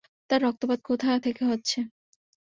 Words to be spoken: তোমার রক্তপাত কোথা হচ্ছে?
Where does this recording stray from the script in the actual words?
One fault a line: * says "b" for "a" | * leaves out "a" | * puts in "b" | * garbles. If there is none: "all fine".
* says "তার" for "তোমার"
* puts in "থেকে"